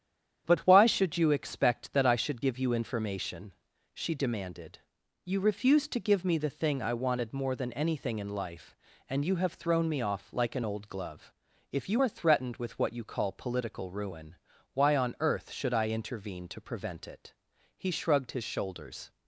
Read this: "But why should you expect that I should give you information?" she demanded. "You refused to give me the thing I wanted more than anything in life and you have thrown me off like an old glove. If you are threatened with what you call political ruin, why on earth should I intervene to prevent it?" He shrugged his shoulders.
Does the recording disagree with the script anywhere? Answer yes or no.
no